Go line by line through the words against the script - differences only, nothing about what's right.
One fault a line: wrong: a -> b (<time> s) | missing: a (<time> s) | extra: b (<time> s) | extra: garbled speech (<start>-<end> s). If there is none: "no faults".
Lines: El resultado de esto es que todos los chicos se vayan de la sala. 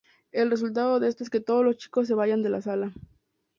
no faults